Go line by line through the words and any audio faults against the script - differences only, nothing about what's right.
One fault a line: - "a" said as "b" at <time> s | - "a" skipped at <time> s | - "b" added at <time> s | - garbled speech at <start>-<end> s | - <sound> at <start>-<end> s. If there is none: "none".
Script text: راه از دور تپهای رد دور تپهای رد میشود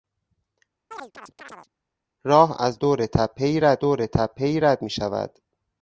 - chirp at 0.9-1.7 s